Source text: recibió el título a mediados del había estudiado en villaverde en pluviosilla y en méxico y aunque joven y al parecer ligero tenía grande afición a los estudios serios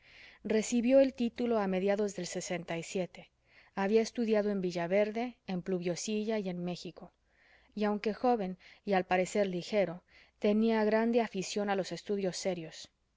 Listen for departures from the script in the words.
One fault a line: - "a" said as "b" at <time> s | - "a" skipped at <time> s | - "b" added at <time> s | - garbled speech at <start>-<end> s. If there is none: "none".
none